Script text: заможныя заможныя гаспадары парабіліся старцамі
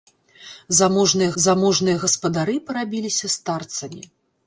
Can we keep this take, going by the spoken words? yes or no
yes